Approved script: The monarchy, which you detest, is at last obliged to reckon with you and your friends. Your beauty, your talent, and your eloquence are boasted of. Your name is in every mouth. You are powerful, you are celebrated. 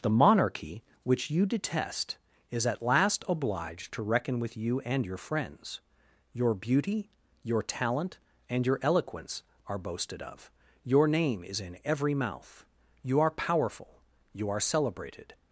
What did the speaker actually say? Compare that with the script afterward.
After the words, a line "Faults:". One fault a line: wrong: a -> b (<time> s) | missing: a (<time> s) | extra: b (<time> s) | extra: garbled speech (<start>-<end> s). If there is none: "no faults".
The monarchy, which you detest, is at last obliged to reckon with you and your friends. Your beauty, your talent, and your eloquence are boasted of. Your name is in every mouth. You are powerful, you are celebrated.
Faults:
no faults